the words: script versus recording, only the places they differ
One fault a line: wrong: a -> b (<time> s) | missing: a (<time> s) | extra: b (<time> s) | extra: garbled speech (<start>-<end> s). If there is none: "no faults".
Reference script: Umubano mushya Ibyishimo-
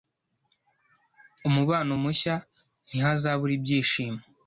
extra: Ntihazabura (2.9 s)